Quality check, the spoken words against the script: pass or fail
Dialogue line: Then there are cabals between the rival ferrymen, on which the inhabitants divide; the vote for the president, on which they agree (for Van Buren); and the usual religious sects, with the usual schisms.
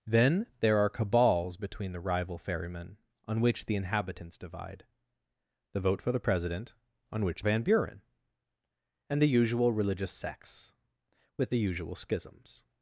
fail